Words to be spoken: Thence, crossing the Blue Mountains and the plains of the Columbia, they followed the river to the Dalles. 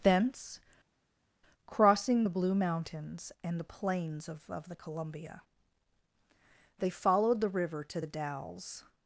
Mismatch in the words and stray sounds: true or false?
true